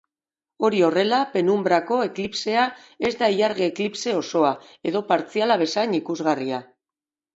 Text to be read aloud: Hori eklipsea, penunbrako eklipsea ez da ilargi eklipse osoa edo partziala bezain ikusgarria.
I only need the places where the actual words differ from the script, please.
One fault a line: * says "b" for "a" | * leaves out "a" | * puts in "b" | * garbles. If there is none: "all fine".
* says "horrela" for "eklipsea"